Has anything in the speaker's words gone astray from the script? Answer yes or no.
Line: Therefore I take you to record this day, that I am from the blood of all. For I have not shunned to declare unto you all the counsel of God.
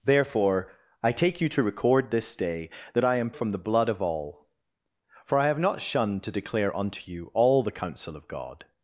no